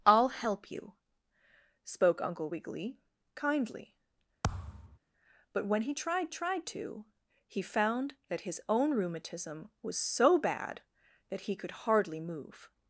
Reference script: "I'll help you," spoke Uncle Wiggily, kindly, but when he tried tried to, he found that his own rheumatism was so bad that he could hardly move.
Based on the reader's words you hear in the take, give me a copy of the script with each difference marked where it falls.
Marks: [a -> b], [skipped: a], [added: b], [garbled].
"I'll help you," spoke Uncle Wiggily, kindly, but when he tried tried to, he found that his own rheumatism was so bad that he could hardly move.